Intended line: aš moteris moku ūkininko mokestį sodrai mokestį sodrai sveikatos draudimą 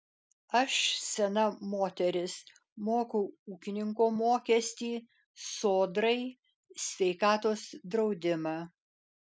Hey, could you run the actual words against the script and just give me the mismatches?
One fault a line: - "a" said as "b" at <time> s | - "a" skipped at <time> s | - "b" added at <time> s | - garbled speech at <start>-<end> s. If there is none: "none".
- "sena" added at 1.1 s
- "mokestį sodrai" skipped at 6.2 s